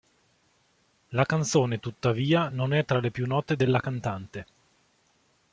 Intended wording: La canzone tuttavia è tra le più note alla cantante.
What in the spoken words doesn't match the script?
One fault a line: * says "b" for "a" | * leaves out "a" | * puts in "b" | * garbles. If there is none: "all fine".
* puts in "non"
* says "della" for "alla"